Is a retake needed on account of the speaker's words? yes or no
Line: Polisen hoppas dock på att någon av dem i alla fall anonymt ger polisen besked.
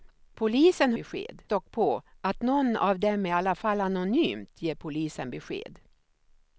yes